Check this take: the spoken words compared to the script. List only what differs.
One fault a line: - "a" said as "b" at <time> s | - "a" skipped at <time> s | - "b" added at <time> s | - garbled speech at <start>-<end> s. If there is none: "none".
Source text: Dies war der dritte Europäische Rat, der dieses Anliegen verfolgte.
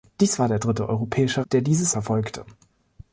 - "Rat" skipped at 1.4 s
- "Anliegen" skipped at 1.9 s